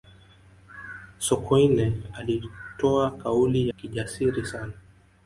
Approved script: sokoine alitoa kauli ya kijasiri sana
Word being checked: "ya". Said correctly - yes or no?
no